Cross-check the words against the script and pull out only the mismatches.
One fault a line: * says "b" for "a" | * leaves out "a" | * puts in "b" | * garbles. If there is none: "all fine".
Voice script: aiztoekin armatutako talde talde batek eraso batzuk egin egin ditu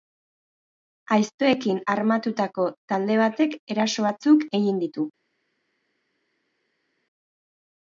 * leaves out "talde"
* leaves out "egin"